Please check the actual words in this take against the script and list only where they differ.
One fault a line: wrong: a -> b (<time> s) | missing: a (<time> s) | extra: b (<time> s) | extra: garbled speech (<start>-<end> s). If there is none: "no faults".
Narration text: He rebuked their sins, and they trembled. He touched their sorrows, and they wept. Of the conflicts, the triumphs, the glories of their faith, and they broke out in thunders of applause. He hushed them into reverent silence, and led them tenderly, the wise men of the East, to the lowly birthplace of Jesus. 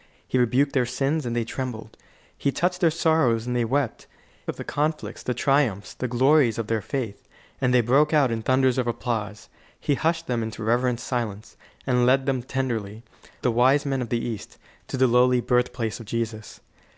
no faults